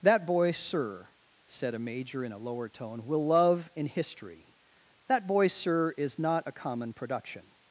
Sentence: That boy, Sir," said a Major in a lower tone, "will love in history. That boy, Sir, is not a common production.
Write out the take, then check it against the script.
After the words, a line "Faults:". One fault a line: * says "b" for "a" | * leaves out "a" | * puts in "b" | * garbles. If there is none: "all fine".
That boy, Sir," said a Major in a lower tone, "will love in history. That boy, Sir, is not a common production.
Faults:
all fine